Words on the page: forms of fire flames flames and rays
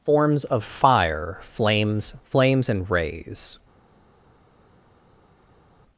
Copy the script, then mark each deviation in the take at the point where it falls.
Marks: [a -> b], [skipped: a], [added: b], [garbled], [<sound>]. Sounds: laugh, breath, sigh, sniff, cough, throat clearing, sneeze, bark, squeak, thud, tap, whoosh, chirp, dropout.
forms of fire flames flames and rays